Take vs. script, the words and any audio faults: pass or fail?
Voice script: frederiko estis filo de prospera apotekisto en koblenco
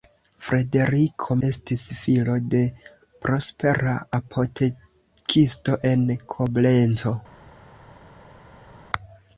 pass